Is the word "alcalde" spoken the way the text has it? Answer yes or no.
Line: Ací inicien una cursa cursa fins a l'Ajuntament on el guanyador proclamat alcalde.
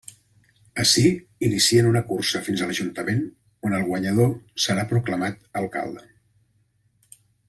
yes